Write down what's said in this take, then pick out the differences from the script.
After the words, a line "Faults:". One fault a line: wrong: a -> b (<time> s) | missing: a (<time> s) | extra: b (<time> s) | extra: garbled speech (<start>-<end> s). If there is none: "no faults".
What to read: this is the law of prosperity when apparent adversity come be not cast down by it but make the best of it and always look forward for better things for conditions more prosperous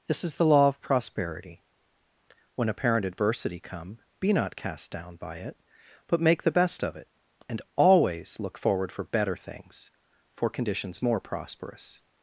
this is the law of prosperity when apparent adversity come be not cast down by it but make the best of it and always look forward for better things for conditions more prosperous
Faults:
no faults